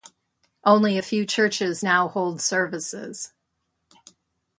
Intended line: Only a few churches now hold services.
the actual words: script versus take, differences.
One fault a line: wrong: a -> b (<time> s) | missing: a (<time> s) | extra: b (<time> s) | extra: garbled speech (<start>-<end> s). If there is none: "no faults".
no faults